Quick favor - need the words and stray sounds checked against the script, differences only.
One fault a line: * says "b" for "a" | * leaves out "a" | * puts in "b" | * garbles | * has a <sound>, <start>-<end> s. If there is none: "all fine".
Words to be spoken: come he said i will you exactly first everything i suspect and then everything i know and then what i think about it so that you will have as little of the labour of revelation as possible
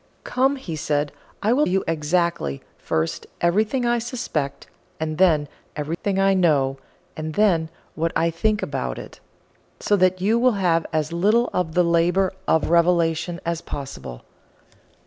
* has a dropout, 5.9-6.0 s